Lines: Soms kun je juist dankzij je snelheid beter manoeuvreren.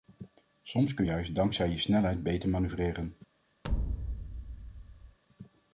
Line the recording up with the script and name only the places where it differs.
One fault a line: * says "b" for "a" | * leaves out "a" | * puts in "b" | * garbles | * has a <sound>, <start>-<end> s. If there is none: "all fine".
* leaves out "je"
* has a thud, 3.6-5.2 s